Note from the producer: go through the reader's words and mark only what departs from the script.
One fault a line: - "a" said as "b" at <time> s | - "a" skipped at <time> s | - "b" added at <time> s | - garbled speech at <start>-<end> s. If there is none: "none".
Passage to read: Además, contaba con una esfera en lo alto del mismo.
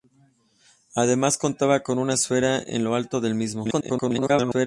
- garbled speech at 3.6-4.7 s